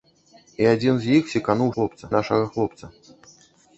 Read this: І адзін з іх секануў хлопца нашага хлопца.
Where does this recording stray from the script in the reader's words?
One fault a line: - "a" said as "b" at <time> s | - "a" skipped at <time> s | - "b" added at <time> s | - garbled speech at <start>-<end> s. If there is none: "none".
none